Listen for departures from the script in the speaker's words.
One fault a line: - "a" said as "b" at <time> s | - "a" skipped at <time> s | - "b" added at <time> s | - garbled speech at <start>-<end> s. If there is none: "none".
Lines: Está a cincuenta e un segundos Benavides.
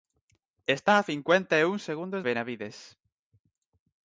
none